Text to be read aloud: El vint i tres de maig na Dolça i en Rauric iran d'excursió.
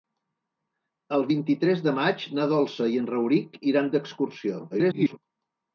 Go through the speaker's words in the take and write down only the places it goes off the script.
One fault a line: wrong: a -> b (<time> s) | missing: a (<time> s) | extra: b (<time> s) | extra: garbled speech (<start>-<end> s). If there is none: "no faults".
extra: garbled speech (4.7-5.2 s)